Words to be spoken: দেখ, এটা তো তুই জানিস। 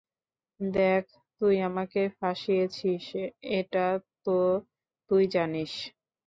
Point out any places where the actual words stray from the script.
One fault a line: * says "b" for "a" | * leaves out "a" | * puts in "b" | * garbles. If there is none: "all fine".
* puts in "তুই আমাকে ফাঁসিয়েছিস"